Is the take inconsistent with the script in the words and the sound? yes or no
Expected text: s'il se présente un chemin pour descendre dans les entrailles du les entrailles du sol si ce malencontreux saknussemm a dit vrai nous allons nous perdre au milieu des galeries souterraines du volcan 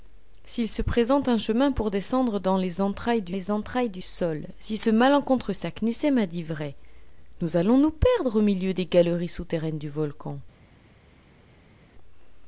no